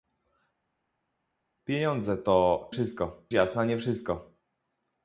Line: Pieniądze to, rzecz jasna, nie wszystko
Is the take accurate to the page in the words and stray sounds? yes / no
no